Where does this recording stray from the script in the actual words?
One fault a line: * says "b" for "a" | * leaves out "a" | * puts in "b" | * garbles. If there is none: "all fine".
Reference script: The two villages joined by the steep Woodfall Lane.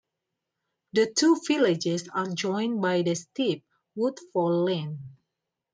* puts in "are"